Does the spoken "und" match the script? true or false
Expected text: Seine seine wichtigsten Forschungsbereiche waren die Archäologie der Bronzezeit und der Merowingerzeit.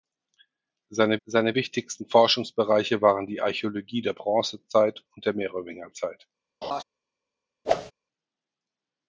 true